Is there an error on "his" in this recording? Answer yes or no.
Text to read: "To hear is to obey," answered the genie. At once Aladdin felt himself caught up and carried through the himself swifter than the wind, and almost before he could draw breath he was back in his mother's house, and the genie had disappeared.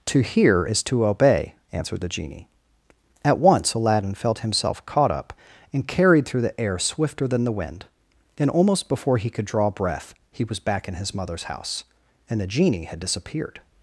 no